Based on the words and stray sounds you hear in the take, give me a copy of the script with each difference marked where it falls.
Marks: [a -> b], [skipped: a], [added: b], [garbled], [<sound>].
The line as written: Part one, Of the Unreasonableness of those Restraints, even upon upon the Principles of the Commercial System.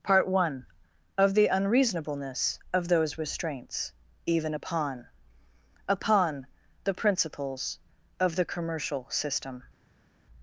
Part one, Of the Unreasonableness of those Restraints, even upon upon the Principles of the Commercial System.